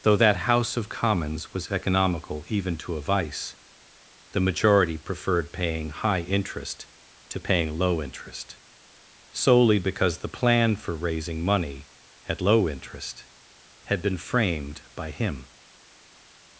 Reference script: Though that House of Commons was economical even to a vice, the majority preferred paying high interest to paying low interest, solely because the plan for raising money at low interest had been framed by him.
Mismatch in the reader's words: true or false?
false